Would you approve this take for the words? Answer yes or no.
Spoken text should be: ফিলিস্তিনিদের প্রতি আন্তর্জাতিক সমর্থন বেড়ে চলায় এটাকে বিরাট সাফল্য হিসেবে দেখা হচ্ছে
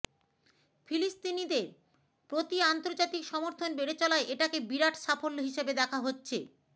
yes